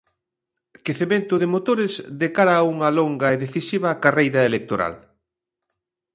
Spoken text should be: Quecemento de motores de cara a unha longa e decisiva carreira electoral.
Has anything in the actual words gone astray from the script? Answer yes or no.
no